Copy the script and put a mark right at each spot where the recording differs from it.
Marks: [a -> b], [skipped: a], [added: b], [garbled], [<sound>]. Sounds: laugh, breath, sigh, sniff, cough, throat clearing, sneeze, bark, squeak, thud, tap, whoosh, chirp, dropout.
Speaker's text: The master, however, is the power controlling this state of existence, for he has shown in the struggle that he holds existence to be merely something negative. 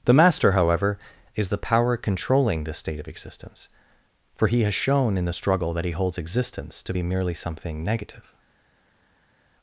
The master, however, is the power controlling this state of existence, for he has shown in the struggle that he holds existence to be merely something negative.